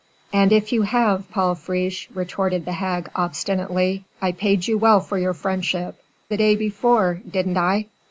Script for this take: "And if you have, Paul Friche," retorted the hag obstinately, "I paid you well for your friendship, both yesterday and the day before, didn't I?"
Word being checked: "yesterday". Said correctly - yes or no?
no